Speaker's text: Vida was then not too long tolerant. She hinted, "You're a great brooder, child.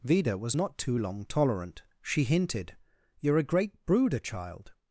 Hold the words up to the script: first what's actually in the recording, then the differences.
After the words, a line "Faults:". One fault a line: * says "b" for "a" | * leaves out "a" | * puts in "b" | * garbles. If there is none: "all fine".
Vida was not too long tolerant. She hinted, "You're a great brooder, child.
Faults:
* leaves out "then"